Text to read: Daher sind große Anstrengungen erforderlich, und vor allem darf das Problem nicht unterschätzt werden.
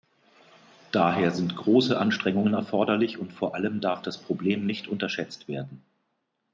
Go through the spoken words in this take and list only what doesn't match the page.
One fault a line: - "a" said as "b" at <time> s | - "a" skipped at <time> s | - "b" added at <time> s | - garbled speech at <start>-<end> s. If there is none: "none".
none